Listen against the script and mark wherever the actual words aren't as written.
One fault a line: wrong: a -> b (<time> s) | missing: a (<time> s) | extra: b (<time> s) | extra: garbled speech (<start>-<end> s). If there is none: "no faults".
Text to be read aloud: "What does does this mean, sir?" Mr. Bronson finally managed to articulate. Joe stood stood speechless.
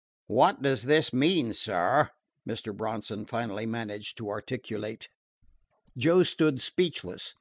missing: does (0.8 s)
missing: stood (6.6 s)